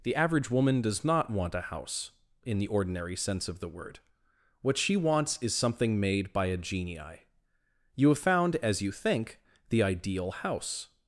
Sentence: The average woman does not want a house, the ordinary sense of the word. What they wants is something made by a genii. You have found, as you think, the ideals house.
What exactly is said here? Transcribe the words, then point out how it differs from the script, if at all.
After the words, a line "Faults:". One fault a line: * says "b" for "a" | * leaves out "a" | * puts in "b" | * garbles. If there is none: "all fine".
The average woman does not want a house, in the ordinary sense of the word. What she wants is something made by a genii. You have found, as you think, the ideal house.
Faults:
* puts in "in"
* says "she" for "they"
* says "ideal" for "ideals"